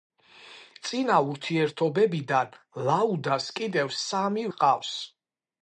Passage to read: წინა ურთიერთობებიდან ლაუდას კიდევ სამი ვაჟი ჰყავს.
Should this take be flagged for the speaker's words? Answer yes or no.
yes